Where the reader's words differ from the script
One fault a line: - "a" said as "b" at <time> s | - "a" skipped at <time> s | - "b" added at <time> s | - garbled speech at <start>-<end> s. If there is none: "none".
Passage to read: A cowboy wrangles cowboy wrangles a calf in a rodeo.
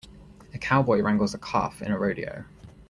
- "cowboy wrangles" skipped at 1.4 s